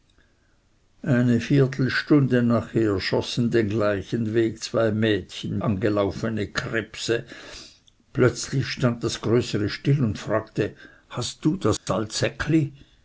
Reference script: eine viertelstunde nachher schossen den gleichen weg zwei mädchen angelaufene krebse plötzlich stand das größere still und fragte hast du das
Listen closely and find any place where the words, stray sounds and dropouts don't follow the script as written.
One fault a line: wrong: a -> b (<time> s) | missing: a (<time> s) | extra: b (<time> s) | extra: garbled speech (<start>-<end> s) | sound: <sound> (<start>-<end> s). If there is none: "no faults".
sound: dropout (11.8-11.9 s)